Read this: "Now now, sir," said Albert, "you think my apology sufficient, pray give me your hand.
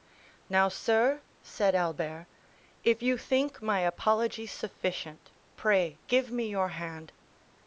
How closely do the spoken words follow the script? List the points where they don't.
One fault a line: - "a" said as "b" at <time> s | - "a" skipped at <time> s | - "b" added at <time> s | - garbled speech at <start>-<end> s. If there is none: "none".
- "now" skipped at 0.7 s
- "if" added at 2.8 s